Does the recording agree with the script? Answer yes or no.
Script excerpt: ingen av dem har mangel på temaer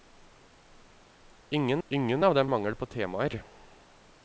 no